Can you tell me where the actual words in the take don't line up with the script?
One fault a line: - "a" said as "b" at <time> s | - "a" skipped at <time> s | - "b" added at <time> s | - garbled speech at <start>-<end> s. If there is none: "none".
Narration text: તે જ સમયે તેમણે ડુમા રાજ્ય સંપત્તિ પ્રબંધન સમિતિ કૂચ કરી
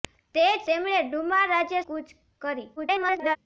- "સમયે" skipped at 0.6 s
- "સંપત્તિ પ્રબંધન સમિતિ" skipped at 1.8 s
- garbled speech at 2.8-3.4 s